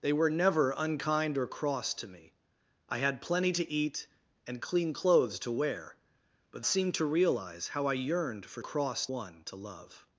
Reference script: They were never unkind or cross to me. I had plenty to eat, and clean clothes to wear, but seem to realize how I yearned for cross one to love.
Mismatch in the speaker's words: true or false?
false